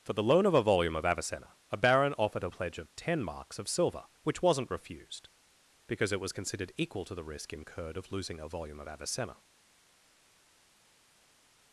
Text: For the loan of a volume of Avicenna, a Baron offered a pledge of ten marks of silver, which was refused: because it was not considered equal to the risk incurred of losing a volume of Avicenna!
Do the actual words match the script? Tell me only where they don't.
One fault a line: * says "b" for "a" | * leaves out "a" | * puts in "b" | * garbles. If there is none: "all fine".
* says "wasn't" for "was"
* leaves out "not"